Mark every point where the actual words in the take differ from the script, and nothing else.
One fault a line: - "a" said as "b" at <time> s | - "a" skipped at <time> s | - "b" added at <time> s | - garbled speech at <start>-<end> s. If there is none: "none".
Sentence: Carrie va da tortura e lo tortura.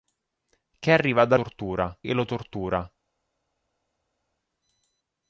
none